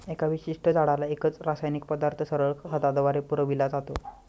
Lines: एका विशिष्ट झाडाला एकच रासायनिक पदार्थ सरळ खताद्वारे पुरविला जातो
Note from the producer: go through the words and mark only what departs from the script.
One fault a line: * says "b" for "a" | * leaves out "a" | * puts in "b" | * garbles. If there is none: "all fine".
all fine